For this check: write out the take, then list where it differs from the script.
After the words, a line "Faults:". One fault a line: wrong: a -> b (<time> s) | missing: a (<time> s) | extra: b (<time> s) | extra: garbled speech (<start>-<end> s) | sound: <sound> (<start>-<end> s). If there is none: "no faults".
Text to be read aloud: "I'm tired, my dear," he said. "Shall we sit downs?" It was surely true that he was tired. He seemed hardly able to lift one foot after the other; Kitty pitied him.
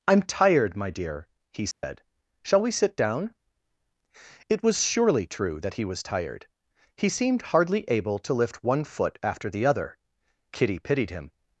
"I'm tired, my dear," he said. "Shall we sit down?" It was surely true that he was tired. He seemed hardly able to lift one foot after the other; Kitty pitied him.
Faults:
sound: dropout (1.7-1.8 s)
wrong: downs -> down (3.0 s)